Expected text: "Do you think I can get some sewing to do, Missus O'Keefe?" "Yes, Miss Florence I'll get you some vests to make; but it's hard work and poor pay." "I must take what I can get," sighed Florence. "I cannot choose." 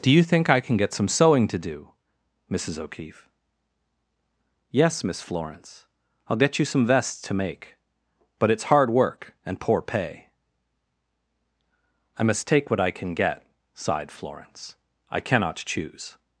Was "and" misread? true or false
false